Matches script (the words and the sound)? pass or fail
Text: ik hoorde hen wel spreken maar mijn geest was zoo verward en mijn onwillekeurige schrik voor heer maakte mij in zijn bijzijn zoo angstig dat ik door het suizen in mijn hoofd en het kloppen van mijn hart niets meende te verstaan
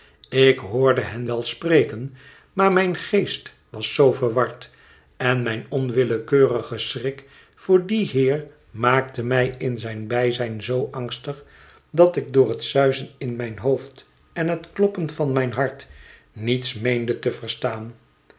fail